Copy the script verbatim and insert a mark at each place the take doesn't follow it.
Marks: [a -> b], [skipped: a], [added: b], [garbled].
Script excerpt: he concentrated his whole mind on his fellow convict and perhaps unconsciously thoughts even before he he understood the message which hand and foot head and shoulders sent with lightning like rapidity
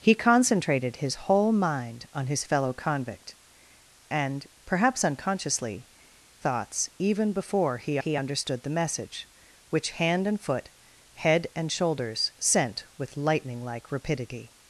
he concentrated his whole mind on his fellow convict and perhaps unconsciously thoughts even before he he understood the message which hand and foot head and shoulders sent with lightning like rapidity